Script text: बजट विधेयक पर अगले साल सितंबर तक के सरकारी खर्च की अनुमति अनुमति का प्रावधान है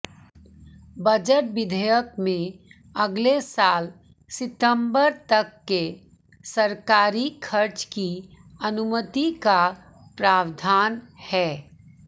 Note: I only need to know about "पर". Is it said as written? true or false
false